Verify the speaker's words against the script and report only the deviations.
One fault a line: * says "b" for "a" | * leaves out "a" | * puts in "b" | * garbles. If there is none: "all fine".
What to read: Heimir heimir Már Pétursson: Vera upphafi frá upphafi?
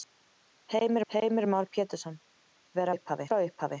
all fine